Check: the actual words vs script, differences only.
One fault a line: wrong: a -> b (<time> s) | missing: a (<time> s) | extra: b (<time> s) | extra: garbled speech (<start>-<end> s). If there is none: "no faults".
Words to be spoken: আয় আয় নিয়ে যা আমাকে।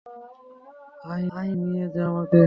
no faults